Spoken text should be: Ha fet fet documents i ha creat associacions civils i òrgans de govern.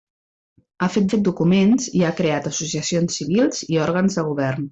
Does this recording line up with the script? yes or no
yes